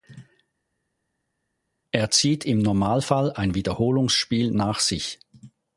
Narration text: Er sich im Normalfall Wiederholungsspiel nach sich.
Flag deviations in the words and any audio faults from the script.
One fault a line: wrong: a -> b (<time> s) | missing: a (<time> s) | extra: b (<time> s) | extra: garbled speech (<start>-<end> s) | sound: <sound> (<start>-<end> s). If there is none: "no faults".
wrong: sich -> zieht (2.1 s)
extra: ein (3.3 s)